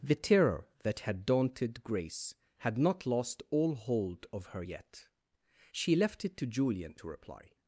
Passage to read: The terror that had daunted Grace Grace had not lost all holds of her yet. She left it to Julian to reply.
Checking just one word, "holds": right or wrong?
wrong